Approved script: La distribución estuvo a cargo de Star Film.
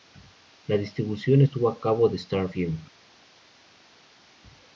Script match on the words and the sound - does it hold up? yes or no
yes